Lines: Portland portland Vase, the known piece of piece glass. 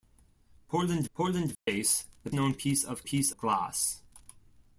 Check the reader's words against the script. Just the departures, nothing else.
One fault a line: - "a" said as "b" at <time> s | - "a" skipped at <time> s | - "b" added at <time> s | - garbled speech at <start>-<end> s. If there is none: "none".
none